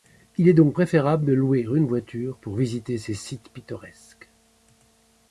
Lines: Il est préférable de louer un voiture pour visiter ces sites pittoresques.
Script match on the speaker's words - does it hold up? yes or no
no